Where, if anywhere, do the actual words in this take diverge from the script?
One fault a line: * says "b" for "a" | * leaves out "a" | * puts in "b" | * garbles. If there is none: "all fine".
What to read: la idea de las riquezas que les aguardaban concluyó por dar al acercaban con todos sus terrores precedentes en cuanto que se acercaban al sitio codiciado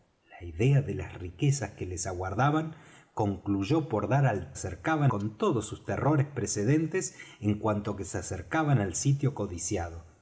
all fine